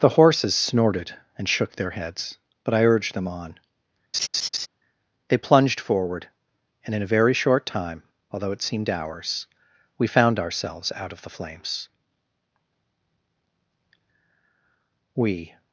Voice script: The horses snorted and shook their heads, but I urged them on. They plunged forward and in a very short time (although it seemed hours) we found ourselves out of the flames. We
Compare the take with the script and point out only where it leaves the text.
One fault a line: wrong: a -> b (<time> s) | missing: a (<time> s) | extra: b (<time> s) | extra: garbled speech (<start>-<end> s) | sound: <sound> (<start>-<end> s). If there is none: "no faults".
sound: laugh (4.1-4.7 s)